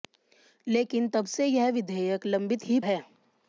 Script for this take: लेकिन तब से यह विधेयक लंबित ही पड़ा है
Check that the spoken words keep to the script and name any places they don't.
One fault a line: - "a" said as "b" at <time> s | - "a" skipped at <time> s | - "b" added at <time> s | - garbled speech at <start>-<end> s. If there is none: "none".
- "पड़ा" skipped at 2.8 s